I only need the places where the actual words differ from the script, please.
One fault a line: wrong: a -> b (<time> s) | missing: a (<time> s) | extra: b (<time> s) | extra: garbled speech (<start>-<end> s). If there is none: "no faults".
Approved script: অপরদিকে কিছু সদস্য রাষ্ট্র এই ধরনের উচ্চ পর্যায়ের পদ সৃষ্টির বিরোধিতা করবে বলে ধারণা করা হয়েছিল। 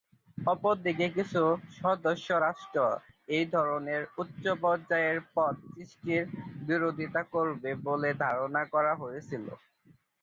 no faults